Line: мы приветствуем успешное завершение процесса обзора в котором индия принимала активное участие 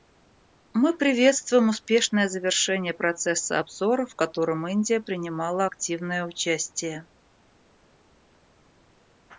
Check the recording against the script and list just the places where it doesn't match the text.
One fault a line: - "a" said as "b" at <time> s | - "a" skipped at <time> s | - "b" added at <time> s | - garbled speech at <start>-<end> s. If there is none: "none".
none